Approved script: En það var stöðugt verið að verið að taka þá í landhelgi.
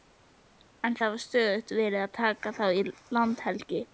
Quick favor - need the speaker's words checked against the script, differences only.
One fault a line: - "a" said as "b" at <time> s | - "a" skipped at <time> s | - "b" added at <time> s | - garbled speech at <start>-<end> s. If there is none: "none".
- "verið að" skipped at 2.1 s